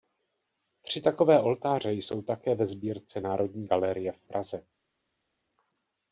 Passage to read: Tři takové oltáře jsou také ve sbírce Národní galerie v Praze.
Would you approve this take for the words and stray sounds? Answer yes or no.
yes